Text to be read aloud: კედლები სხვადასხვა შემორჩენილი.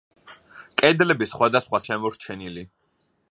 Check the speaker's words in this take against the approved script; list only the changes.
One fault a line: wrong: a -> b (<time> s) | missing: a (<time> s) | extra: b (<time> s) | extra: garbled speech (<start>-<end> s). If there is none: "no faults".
no faults